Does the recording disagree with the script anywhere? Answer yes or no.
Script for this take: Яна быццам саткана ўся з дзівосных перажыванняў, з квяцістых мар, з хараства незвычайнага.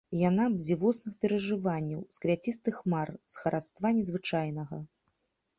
yes